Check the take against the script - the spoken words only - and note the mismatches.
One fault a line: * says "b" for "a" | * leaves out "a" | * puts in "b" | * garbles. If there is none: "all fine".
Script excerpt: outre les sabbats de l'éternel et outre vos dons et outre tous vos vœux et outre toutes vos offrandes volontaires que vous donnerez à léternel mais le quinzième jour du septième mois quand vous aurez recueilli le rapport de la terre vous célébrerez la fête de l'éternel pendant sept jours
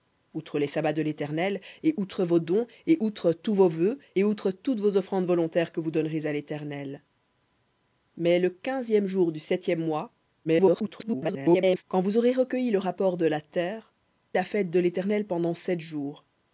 * garbles
* leaves out "vous célébrerez"